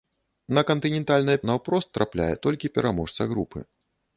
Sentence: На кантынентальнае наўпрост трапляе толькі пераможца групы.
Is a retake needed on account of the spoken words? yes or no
no